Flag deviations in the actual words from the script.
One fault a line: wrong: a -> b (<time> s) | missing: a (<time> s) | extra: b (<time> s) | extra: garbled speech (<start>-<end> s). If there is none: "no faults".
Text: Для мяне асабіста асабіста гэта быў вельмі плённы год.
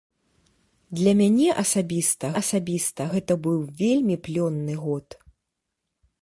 no faults